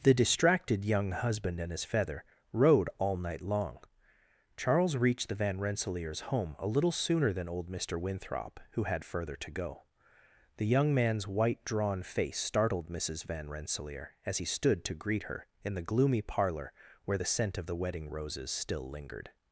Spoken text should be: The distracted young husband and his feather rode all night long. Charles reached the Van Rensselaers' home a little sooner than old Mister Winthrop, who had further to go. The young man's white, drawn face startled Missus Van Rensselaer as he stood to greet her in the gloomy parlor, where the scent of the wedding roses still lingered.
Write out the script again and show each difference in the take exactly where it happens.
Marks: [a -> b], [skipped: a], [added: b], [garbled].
The distracted young husband and his feather rode all night long. Charles reached the Van Rensselaers' home a little sooner than old Mister Winthrop, who had further to go. The young man's white, drawn face startled Missus Van Rensselaer as he stood to greet her in the gloomy parlor, where the scent of the wedding roses still lingered.